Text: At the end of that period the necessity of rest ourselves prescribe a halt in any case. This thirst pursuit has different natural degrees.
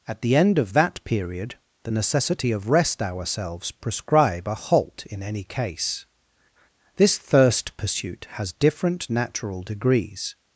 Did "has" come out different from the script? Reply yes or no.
no